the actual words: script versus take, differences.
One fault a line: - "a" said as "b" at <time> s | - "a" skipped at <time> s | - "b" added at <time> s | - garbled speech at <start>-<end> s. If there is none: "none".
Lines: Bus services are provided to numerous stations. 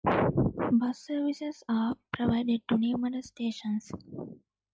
none